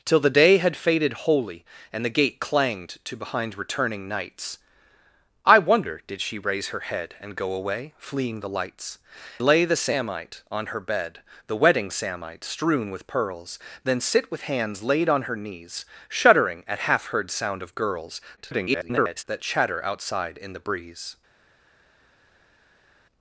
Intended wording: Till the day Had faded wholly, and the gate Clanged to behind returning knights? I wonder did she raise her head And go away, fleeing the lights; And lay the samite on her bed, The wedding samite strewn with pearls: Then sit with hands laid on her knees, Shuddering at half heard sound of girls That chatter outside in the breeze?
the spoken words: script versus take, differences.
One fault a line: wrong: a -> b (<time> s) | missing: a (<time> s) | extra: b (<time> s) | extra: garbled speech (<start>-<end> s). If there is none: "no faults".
missing: And (9.0 s)
extra: garbled speech (18.4-19.2 s)